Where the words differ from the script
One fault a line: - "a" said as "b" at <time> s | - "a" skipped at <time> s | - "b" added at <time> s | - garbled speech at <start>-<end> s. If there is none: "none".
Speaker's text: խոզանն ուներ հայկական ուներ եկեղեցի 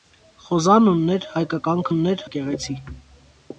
none